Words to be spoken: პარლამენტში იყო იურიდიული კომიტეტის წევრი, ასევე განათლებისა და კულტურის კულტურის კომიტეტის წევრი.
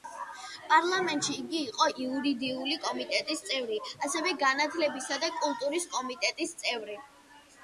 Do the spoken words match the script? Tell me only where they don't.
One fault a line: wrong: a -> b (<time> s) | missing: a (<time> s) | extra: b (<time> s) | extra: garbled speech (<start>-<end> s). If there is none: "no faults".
extra: იგი (1.4 s)
missing: კულტურის (5.9 s)